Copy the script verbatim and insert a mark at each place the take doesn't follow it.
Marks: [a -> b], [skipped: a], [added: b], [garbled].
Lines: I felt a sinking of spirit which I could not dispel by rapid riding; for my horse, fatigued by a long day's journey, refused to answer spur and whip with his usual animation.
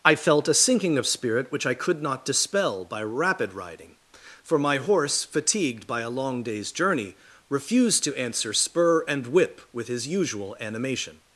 I felt a sinking of spirit which I could not dispel by rapid riding; for my horse, fatigued by a long day's journey, refused to answer spur and whip with his usual animation.